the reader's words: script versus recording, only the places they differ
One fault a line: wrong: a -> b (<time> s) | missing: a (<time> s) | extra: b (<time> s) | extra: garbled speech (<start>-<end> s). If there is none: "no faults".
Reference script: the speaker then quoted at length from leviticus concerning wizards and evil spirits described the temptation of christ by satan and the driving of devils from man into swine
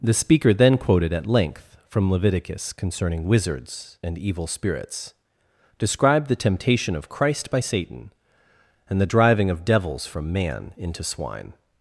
no faults